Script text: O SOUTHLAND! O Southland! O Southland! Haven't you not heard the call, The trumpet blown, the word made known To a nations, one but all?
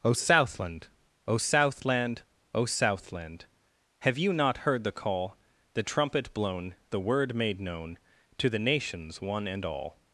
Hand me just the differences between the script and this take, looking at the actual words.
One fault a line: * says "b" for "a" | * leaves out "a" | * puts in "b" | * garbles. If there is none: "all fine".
* says "Have" for "Haven't"
* says "the" for "a"
* says "and" for "but"